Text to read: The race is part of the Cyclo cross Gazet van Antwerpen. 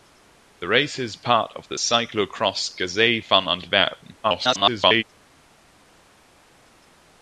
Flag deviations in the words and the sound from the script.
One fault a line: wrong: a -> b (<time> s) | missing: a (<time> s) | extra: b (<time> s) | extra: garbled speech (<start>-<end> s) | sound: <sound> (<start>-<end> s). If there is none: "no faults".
extra: garbled speech (4.2-5.0 s)